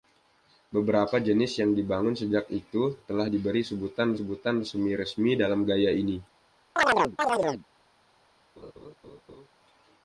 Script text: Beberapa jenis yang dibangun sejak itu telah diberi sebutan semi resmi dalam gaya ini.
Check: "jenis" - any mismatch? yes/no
no